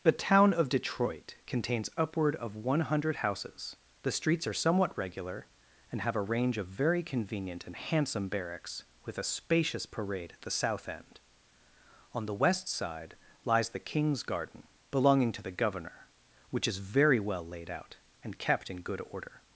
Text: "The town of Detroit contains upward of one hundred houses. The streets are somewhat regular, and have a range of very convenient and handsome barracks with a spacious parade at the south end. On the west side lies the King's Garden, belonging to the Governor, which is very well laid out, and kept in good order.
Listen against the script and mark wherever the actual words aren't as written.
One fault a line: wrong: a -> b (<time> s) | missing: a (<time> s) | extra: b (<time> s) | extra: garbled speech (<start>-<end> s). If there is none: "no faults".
no faults